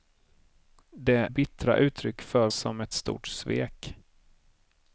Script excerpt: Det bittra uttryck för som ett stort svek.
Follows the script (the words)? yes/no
yes